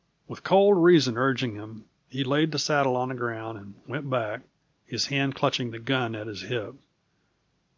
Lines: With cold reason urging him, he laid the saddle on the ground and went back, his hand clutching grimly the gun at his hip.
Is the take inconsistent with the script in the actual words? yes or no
yes